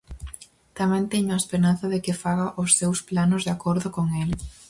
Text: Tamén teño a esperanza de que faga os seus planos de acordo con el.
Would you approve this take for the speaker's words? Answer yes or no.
yes